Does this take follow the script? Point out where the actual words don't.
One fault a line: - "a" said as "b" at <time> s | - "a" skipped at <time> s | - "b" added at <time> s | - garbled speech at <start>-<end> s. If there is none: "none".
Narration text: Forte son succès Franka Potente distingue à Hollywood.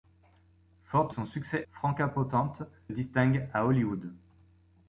none